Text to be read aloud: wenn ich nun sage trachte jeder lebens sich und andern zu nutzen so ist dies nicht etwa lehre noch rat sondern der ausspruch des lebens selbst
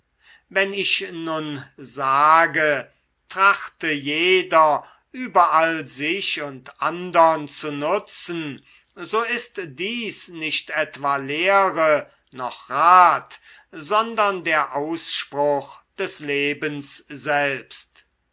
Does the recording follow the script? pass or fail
fail